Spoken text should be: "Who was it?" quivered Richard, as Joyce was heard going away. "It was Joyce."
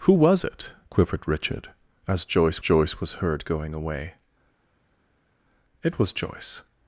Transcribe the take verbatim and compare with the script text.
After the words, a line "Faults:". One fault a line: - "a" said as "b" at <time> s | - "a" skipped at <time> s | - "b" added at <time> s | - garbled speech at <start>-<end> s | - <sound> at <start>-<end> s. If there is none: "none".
"Who was it?" quivered Richard, as Joyce Joyce was heard going away. "It was Joyce."
Faults:
- "Joyce" added at 2.6 s